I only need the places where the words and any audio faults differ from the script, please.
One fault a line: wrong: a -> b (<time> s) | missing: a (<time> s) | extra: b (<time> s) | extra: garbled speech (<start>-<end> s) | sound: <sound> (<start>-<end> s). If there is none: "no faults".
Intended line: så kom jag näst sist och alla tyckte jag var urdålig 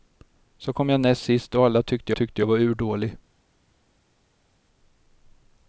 extra: tyckte (2.1 s)